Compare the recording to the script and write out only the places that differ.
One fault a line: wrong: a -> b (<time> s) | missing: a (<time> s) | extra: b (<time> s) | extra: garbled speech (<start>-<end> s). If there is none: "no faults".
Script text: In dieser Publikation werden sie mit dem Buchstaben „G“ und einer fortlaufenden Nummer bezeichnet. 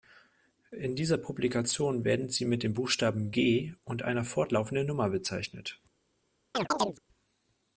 no faults